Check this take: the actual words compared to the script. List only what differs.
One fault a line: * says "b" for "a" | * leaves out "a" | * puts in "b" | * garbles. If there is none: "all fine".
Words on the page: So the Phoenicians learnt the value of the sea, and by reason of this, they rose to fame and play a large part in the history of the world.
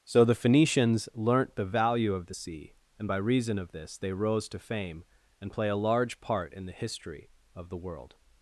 all fine